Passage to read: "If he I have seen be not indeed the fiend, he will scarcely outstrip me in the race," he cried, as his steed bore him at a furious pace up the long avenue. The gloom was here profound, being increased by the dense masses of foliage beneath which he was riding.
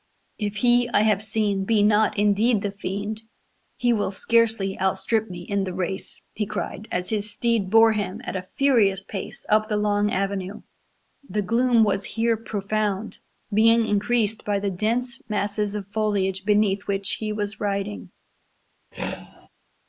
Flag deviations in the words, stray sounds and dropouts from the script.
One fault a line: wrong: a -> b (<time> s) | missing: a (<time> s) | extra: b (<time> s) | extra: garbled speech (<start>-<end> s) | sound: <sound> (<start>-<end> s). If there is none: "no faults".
sound: throat clearing (18.9-19.5 s)